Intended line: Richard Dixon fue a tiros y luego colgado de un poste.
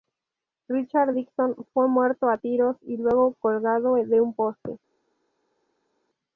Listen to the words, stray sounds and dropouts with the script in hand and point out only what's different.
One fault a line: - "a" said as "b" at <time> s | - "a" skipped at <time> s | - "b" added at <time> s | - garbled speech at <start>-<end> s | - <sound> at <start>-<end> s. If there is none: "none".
- "muerto" added at 1.9 s